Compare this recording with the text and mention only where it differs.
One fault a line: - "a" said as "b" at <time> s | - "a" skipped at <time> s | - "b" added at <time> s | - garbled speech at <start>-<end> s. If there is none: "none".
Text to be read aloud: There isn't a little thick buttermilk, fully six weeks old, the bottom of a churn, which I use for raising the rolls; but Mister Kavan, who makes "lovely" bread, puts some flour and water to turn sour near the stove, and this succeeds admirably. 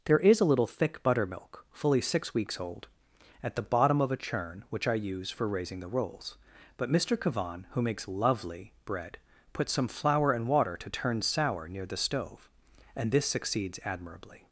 - "isn't" said as "is" at 0.2 s
- "at" added at 3.4 s